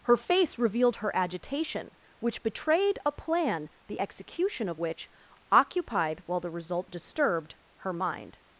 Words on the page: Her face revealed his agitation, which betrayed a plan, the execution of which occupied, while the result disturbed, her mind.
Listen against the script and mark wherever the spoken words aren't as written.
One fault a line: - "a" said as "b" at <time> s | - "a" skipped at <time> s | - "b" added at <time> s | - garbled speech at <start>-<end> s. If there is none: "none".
- "his" said as "her" at 1.0 s